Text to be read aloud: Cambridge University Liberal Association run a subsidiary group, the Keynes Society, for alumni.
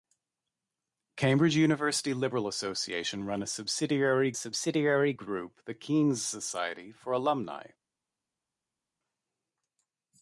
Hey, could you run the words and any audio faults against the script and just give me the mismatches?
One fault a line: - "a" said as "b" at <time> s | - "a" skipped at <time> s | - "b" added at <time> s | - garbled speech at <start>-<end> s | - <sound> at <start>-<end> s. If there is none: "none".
- "subsidiary" added at 4.3 s